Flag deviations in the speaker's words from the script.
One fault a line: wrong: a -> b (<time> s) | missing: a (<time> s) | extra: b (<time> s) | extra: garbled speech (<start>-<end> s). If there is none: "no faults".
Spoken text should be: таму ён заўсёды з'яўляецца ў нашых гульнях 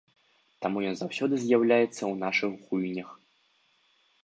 no faults